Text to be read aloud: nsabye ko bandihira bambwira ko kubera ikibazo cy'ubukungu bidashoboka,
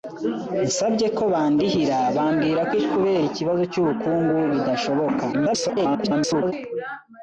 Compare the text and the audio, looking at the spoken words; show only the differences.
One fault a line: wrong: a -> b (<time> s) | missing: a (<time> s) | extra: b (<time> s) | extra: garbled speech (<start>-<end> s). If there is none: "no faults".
extra: garbled speech (5.3-6.5 s)